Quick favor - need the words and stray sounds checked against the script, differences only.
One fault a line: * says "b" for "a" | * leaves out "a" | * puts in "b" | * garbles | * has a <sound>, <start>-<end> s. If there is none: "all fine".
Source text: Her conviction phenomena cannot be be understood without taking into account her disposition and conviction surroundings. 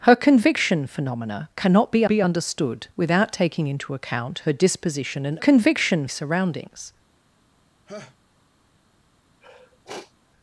* has a laugh, 7.9-8.2 s
* has a sniff, 9.4-10.1 s